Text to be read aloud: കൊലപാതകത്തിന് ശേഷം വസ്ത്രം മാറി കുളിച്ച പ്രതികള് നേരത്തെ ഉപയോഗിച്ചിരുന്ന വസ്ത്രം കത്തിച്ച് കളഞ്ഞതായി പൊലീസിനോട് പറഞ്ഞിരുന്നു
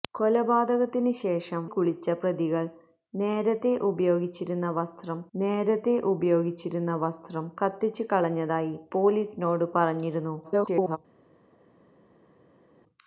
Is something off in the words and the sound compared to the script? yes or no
yes